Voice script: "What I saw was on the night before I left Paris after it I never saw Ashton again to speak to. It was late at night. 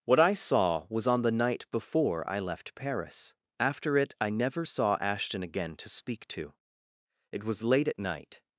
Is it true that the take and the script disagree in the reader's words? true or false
false